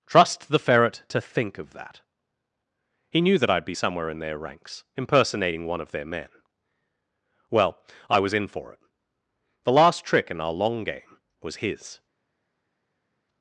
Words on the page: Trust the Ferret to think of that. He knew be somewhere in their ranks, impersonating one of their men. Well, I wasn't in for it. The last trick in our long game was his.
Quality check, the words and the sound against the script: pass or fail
fail